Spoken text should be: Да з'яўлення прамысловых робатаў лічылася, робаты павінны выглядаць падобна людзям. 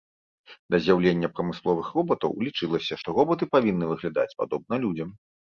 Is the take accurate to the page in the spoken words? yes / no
no